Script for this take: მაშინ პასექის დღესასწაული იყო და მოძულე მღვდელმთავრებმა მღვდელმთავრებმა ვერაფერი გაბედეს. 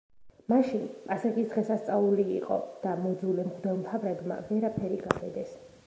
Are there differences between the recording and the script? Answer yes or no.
yes